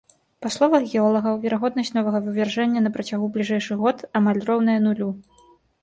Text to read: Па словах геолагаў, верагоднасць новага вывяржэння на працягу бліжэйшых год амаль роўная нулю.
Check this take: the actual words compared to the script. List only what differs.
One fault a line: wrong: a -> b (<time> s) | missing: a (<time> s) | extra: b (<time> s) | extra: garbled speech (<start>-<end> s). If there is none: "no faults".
no faults